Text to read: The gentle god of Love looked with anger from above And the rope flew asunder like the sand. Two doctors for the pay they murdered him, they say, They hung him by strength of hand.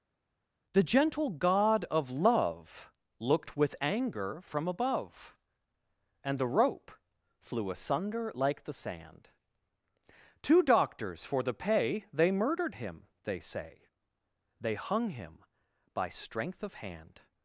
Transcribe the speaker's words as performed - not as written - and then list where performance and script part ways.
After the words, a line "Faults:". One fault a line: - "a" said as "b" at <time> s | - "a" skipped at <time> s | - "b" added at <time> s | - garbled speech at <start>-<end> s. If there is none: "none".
The gentle god of Love looked with anger from above And the rope flew asunder like the sand. Two doctors for the pay they murdered him, they say, They hung him by strength of hand.
Faults:
none